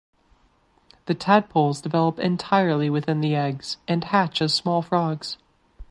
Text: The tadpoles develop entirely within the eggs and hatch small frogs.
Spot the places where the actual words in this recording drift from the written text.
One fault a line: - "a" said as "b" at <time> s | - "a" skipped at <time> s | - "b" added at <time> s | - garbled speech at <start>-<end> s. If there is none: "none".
- "as" added at 4.4 s